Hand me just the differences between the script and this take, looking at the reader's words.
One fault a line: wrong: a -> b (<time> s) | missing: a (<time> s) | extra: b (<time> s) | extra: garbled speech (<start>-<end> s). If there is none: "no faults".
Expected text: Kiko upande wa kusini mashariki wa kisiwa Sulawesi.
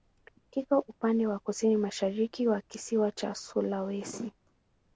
extra: cha (3.1 s)